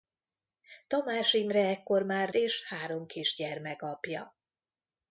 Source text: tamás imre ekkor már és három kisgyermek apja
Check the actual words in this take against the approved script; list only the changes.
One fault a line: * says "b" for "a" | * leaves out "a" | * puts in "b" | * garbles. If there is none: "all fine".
all fine